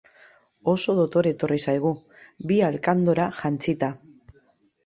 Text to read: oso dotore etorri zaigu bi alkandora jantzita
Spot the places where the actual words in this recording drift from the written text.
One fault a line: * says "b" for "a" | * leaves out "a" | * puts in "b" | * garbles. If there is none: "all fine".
all fine